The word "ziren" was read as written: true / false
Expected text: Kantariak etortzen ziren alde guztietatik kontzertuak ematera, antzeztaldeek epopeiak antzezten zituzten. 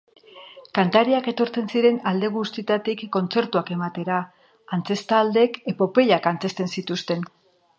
true